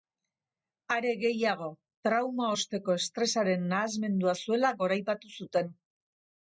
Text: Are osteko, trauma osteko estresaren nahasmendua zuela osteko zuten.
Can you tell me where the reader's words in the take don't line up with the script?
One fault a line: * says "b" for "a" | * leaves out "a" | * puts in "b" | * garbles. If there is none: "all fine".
* says "gehiago" for "osteko"
* says "goraipatu" for "osteko"